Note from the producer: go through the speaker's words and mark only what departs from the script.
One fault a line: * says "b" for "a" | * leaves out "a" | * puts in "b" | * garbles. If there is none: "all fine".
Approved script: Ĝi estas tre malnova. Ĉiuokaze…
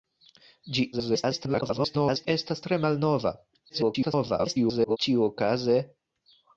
* garbles
* garbles